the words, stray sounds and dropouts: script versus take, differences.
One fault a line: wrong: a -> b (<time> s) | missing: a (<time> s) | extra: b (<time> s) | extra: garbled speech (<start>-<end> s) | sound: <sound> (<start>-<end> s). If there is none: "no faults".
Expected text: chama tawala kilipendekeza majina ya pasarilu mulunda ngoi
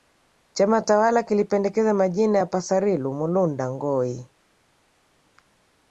no faults